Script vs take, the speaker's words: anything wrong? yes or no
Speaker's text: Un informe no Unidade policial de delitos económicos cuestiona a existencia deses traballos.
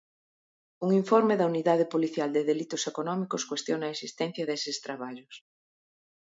yes